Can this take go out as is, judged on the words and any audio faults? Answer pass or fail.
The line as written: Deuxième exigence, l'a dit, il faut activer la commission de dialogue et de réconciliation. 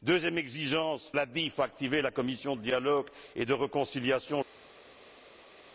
pass